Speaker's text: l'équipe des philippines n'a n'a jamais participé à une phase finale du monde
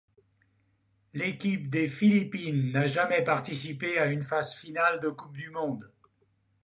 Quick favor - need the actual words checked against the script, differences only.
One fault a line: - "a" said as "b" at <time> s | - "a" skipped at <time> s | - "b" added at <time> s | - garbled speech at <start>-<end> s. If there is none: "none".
- "n'a" skipped at 2.9 s
- "de coupe" added at 5.0 s